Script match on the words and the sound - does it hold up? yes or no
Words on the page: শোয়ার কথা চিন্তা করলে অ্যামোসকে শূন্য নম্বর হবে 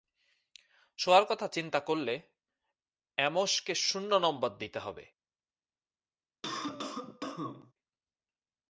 no